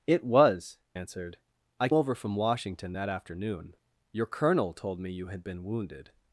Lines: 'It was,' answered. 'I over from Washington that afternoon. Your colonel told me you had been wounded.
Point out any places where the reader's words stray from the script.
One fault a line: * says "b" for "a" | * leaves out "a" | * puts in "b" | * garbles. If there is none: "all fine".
all fine